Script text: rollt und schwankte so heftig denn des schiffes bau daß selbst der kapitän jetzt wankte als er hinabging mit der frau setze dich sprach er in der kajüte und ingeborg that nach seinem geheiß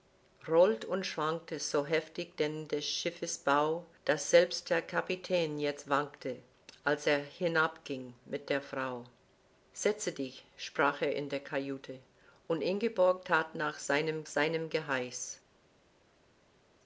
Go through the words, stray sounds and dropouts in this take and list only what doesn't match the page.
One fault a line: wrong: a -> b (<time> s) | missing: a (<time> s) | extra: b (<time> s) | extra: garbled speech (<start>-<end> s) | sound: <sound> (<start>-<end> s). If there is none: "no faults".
extra: seinem (14.2 s)